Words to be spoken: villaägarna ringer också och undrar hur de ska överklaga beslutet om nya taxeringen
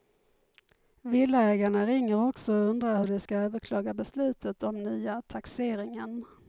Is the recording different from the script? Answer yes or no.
no